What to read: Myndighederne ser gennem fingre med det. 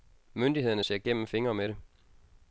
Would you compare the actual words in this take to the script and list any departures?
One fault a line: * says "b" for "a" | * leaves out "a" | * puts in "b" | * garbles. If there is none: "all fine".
all fine